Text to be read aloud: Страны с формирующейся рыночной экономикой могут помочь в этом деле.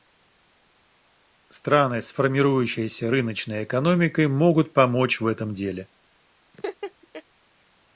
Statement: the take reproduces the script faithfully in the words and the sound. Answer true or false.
false